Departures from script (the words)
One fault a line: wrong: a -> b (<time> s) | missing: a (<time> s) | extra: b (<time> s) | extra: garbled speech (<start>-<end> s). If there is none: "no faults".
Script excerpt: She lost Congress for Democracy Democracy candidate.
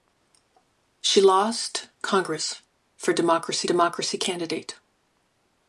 no faults